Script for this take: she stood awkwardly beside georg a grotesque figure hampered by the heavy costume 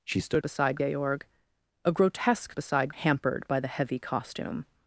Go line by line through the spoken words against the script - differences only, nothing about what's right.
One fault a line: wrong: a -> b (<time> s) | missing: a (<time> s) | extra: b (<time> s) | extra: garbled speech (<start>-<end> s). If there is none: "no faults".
missing: awkwardly (0.4 s)
wrong: figure -> beside (2.5 s)